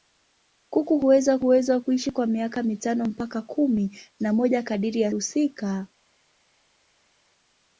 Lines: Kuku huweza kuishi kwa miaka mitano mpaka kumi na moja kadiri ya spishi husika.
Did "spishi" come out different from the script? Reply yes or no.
yes